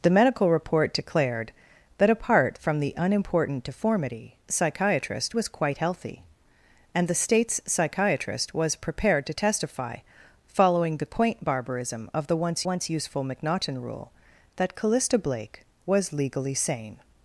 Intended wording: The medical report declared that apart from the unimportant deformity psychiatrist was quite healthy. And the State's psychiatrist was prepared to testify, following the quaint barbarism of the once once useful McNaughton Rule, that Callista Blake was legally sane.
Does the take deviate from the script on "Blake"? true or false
false